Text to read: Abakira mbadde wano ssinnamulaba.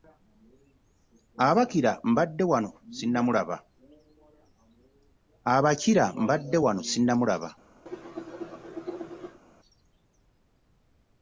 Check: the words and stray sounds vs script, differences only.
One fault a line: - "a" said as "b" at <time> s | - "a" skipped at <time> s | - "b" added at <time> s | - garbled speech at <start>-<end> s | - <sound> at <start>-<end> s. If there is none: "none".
- cough at 7.9-9.4 s